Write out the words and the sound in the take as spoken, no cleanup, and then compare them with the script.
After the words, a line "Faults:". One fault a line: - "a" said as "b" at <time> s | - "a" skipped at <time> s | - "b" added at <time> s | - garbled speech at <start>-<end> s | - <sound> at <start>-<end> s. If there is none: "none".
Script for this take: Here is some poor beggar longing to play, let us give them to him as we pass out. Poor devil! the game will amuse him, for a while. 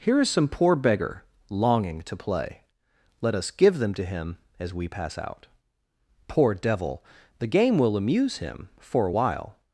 Here is some poor beggar longing to play, let us give them to him as we pass out. Poor devil! the game will amuse him, for a while.
Faults:
none